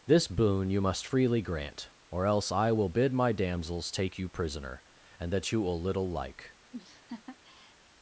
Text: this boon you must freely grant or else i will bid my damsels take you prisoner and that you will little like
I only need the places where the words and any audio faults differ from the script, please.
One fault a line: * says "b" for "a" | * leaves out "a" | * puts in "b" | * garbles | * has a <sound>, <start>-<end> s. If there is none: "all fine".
* has a laugh, 6.7-7.8 s